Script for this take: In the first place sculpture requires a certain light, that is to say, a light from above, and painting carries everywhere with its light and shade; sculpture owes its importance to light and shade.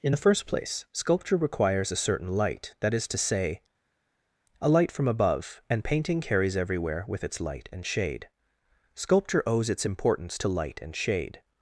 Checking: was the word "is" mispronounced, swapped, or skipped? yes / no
no